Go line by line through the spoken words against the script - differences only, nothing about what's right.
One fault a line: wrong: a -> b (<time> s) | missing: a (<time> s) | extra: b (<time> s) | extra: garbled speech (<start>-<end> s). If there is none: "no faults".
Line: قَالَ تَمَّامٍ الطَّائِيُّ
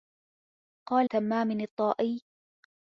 no faults